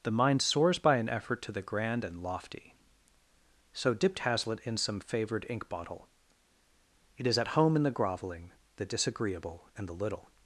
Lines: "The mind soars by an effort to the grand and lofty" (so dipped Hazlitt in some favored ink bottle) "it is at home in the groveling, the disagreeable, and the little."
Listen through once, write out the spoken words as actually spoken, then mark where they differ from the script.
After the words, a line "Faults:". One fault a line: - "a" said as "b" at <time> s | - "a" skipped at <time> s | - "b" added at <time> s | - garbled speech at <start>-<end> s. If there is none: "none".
"The mind soars by an effort to the grand and lofty" (so dipped Hazlitt in some favored ink bottle) "it is at home in the groveling, the disagreeable, and the little."
Faults:
none